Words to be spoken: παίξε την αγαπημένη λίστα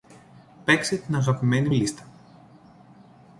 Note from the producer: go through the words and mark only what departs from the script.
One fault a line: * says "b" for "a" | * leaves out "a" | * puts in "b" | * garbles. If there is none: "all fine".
all fine